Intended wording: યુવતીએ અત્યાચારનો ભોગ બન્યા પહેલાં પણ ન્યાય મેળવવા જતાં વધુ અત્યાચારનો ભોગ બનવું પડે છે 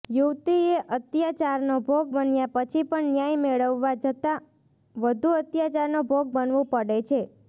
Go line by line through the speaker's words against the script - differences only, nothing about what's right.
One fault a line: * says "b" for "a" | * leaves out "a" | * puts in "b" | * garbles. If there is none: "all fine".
* says "પછી" for "પહેલાં"